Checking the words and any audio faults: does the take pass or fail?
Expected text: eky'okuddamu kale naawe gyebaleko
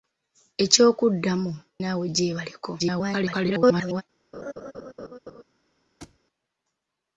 fail